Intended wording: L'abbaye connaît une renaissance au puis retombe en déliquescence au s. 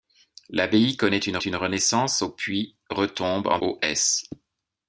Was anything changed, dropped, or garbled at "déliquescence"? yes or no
yes